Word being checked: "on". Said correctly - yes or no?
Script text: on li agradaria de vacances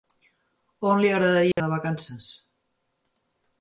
yes